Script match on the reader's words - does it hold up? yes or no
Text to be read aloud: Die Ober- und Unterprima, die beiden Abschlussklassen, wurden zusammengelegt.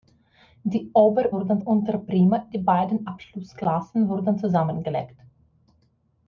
no